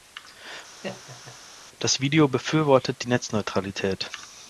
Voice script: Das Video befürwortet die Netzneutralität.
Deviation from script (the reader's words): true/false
false